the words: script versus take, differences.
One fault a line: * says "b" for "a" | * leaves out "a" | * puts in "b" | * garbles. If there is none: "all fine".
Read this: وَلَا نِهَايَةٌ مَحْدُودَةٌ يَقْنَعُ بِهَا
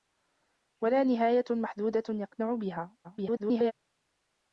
* garbles